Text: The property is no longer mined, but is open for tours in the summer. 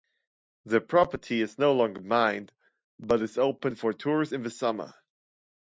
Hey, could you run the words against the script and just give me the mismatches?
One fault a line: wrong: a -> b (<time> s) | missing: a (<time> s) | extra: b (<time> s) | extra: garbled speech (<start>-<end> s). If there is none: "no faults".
no faults